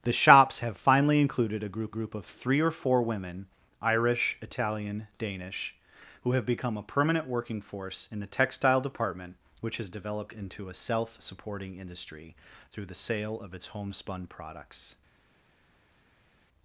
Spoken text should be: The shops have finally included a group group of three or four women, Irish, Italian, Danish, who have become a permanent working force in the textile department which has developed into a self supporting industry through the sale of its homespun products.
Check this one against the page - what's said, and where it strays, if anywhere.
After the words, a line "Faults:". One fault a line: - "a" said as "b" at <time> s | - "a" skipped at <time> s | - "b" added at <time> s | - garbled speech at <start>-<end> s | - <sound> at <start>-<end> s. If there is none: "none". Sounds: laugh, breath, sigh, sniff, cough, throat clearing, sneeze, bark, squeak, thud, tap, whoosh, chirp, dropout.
The shops have finally included a group group of three or four women, Irish, Italian, Danish, who have become a permanent working force in the textile department which has developed into a self supporting industry through the sale of its homespun products.
Faults:
none